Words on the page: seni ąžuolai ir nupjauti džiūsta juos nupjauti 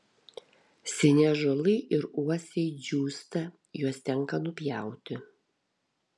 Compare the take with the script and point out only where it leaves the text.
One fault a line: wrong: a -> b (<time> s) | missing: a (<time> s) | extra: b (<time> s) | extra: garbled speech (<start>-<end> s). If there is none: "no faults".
wrong: nupjauti -> uosiai (2.2 s)
extra: tenka (4.1 s)